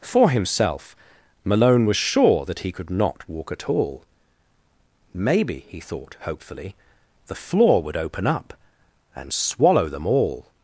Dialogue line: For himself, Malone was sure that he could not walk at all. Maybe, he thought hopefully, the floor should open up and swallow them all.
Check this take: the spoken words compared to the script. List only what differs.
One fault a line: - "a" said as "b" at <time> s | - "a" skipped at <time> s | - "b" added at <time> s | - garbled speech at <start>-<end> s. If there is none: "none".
- "should" said as "would" at 7.8 s